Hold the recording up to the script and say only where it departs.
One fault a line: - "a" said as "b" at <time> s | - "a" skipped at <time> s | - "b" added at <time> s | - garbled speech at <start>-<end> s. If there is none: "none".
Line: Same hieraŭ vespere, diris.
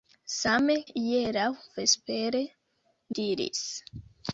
none